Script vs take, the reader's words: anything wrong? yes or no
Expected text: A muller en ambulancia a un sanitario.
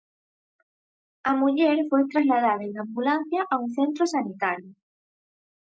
yes